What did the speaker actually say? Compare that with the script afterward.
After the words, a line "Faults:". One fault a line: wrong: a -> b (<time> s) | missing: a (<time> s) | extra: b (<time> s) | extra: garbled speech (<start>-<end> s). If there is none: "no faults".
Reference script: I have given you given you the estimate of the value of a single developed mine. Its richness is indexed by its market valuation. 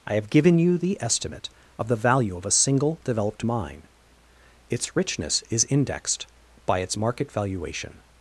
I have given you the estimate of the value of a single developed mine. Its richness is indexed by its market valuation.
Faults:
missing: given you (0.8 s)